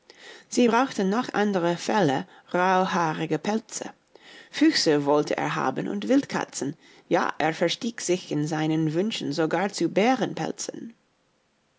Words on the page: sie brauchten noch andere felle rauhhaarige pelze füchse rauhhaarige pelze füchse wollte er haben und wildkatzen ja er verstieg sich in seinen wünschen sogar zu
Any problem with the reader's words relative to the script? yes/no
yes